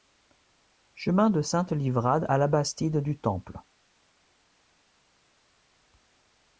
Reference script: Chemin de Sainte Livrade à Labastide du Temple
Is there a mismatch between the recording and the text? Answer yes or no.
no